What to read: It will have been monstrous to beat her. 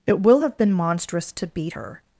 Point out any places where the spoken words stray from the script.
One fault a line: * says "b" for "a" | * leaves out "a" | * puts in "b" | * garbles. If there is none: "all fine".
all fine